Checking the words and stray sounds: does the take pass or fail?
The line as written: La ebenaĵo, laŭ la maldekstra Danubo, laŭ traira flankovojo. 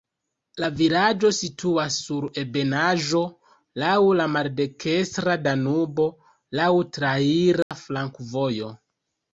fail